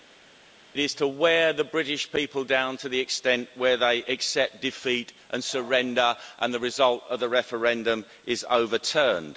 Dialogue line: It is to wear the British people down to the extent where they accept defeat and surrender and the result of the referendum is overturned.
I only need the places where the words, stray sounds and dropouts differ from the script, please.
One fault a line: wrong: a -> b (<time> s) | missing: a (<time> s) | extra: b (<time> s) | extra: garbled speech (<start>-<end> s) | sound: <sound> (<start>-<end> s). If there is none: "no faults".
no faults